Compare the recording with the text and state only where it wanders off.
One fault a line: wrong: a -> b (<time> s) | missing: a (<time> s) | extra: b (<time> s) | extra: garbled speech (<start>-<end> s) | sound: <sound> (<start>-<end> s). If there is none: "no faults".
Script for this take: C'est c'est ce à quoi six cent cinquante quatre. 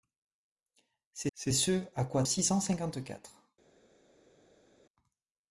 no faults